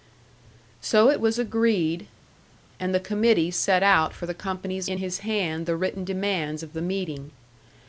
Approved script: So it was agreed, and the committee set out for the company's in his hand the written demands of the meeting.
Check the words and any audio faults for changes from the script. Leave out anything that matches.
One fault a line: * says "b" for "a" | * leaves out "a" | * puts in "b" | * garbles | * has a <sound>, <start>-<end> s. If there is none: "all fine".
all fine